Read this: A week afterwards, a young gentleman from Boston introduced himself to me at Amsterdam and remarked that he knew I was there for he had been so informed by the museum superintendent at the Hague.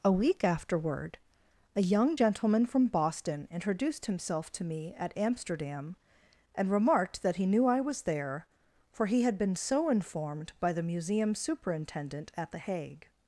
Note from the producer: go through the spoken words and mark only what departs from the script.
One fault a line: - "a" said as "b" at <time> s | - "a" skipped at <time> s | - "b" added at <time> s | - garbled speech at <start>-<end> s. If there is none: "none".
- "afterwards" said as "afterward" at 0.4 s